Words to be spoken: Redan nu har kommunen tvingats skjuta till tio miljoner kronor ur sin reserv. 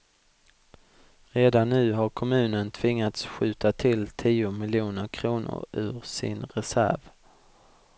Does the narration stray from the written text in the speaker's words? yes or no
no